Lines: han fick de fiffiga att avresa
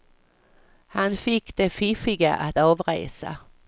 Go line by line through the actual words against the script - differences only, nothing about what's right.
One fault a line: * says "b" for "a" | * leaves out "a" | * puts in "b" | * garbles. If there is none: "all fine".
all fine